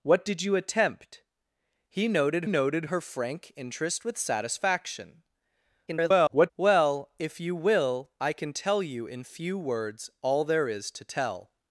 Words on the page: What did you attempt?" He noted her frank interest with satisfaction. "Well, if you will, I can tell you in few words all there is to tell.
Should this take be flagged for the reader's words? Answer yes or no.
yes